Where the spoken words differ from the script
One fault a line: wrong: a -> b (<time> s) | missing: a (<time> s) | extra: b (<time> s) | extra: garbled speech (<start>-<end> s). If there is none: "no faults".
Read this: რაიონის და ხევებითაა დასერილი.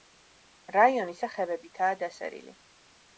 no faults